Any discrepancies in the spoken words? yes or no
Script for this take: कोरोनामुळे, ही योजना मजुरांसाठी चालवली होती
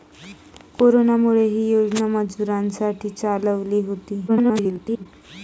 yes